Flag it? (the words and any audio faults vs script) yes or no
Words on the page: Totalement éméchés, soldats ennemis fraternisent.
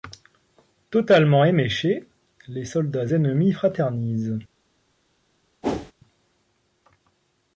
yes